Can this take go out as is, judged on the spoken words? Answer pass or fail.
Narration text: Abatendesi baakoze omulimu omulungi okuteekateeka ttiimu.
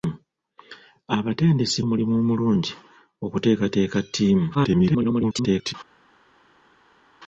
fail